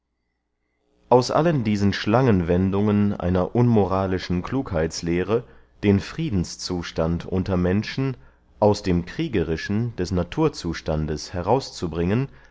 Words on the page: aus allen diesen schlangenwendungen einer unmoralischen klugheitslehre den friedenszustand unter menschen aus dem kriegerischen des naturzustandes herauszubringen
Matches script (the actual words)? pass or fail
pass